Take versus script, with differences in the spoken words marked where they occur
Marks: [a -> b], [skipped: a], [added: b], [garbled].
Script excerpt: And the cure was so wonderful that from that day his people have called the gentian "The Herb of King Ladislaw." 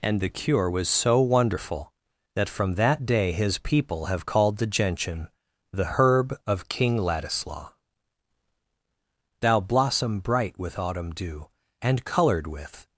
And the cure was so wonderful that from that day his people have called the gentian "The Herb of King Ladislaw." [added: Thou blossom bright with autumn dew And coloured with]